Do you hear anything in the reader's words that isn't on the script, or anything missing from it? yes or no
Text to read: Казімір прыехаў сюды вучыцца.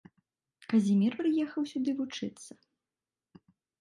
no